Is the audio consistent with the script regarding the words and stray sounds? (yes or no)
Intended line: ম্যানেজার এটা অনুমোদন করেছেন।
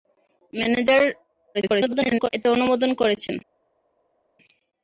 no